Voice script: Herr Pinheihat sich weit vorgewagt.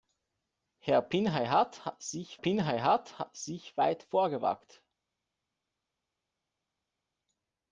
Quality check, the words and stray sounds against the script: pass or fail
fail